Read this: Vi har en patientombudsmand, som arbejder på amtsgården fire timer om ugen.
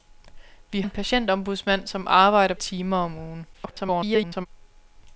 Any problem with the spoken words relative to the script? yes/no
yes